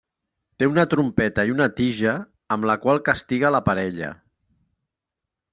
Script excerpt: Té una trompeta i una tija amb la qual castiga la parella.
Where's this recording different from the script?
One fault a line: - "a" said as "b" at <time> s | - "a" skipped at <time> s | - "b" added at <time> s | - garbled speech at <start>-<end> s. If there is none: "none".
none